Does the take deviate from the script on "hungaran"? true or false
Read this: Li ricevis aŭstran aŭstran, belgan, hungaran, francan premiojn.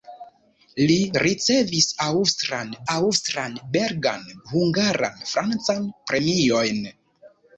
false